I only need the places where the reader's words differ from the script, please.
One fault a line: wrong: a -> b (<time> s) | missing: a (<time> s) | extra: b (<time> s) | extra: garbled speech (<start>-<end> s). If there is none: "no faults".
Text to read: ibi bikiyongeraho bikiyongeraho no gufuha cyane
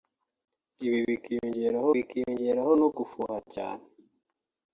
no faults